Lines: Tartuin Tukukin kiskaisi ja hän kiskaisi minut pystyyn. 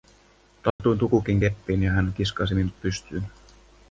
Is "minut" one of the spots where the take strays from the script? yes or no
no